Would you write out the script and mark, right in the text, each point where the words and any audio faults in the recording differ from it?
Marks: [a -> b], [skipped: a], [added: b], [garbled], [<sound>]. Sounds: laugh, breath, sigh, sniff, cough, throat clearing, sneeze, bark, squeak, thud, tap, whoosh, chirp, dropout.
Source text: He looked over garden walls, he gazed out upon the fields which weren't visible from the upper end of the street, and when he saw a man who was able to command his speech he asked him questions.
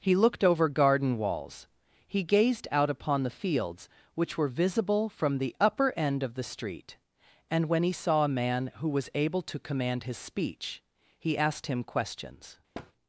He looked over garden walls, he gazed out upon the fields which [weren't -> were] visible from the upper end of the street, and when he saw a man who was able to command his speech he asked him questions. [thud]